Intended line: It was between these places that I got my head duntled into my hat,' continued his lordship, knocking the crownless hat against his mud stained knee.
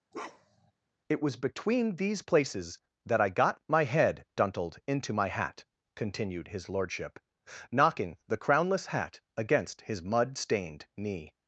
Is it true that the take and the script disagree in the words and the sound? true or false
true